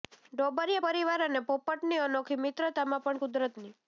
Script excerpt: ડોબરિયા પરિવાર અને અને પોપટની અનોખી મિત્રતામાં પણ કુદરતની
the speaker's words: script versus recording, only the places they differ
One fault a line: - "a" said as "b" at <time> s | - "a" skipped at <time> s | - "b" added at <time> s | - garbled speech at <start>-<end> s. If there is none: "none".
- "અને" skipped at 1.4 s